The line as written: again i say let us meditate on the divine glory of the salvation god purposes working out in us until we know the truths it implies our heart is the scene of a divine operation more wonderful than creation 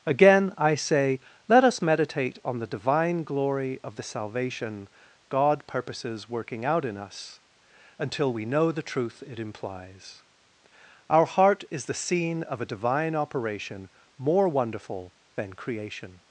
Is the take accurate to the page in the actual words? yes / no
no